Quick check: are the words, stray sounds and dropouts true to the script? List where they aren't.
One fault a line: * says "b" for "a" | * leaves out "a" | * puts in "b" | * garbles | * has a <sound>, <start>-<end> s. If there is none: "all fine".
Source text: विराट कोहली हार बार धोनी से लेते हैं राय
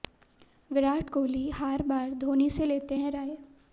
all fine